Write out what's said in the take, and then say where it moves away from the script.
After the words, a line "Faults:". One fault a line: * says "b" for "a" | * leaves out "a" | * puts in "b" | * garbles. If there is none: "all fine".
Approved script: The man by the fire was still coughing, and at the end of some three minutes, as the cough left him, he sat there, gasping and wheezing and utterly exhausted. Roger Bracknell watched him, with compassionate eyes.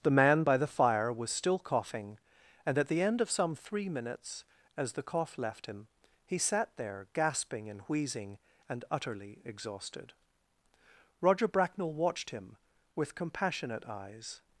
The man by the fire was still coughing, and at the end of some three minutes, as the cough left him, he sat there, gasping and wheezing and utterly exhausted. Roger Bracknell watched him, with compassionate eyes.
Faults:
all fine